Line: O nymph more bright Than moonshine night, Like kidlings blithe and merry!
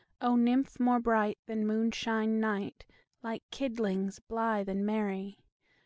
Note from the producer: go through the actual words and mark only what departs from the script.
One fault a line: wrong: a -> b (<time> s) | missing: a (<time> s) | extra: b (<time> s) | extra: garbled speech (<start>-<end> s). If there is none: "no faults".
no faults